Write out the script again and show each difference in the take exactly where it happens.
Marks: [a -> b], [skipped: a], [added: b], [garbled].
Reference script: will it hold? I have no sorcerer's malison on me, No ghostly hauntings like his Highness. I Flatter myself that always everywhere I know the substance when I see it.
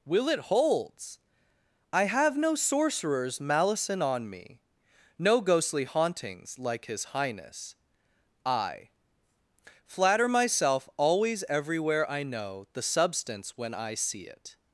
will it [hold? -> holds] I have no sorcerer's malison on me, No ghostly hauntings like his Highness. I Flatter myself [skipped: that] always everywhere I know the substance when I see it.